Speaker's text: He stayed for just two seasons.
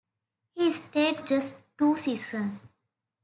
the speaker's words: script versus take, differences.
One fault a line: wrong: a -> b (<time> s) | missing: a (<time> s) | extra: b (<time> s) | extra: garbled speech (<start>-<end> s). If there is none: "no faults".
missing: for (1.2 s)